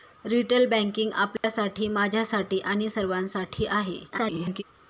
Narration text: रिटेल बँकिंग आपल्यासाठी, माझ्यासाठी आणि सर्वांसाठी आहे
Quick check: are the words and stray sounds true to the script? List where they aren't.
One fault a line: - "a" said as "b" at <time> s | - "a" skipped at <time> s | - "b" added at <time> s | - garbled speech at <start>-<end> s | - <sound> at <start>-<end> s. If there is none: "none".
- dropout at 1.4-1.4 s
- garbled speech at 4.1-4.6 s